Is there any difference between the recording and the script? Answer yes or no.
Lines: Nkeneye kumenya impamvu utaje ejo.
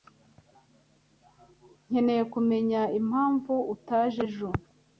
no